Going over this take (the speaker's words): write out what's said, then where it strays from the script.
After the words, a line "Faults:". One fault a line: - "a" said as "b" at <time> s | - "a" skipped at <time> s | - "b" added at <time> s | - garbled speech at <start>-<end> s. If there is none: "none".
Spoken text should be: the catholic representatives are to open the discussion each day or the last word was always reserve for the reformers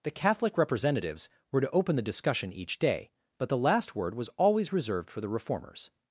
the catholic representatives were to open the discussion each day but the last word was always reserved for the reformers
Faults:
- "are" said as "were" at 1.5 s
- "or" said as "but" at 3.4 s
- "reserve" said as "reserved" at 4.7 s